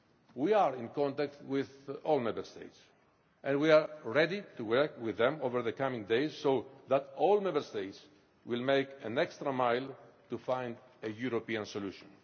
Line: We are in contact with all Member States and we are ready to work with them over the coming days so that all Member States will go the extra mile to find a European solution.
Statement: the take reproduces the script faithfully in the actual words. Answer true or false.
true